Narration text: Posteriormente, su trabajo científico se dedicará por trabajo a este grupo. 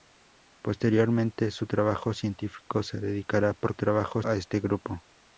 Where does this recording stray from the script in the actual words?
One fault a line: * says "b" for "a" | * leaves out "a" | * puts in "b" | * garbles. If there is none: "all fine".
all fine